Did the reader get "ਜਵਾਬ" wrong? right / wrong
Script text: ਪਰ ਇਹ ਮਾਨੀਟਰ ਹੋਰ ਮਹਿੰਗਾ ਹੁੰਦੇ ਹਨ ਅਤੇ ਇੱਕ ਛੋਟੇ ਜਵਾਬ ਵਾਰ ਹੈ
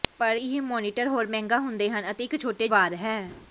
wrong